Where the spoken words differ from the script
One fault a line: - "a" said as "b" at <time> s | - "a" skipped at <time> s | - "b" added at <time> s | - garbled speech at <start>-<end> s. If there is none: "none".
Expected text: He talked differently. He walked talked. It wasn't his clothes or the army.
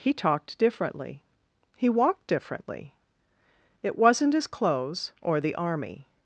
- "talked" said as "differently" at 2.2 s